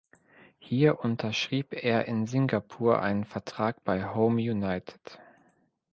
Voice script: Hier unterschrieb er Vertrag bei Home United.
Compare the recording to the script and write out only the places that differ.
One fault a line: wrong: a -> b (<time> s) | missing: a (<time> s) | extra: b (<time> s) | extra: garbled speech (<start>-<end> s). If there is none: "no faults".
extra: in Singapur einen (2.0 s)